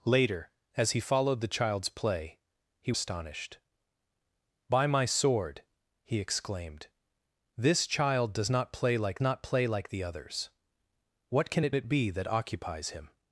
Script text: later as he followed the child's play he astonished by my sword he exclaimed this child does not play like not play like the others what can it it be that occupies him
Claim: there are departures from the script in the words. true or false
false